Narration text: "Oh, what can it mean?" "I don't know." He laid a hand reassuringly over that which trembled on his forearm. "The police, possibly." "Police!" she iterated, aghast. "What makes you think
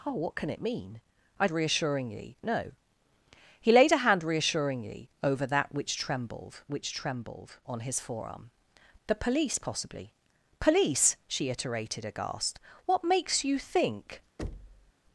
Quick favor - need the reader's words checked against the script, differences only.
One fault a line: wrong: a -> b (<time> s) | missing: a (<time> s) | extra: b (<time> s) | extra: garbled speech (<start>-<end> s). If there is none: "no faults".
wrong: don't -> reassuringly (1.5 s)
extra: which trembled (6.7 s)